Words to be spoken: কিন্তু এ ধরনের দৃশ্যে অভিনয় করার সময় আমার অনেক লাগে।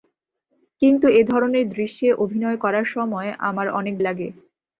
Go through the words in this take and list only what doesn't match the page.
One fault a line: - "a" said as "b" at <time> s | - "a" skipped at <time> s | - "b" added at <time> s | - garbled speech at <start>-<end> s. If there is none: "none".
none